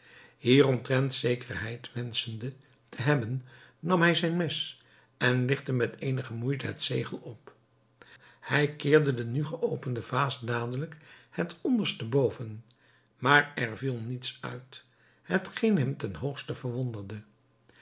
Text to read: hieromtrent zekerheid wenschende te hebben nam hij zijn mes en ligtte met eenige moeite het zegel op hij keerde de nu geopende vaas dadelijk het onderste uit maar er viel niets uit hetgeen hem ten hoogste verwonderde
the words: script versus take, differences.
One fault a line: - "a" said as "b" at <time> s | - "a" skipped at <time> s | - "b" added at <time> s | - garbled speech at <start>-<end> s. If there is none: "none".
- "uit" said as "boven" at 12.1 s